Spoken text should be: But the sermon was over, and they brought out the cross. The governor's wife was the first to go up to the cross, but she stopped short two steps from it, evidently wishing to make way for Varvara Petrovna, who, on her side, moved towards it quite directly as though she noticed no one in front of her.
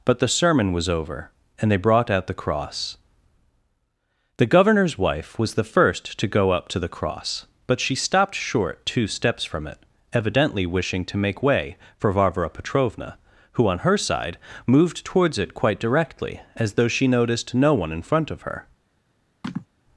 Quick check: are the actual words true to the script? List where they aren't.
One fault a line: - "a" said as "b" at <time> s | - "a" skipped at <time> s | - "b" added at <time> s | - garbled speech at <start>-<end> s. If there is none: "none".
none